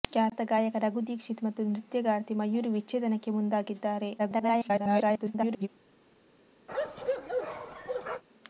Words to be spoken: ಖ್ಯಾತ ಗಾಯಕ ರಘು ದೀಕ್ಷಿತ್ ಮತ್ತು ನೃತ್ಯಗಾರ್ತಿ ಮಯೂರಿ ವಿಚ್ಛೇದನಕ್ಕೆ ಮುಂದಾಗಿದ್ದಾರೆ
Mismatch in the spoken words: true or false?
true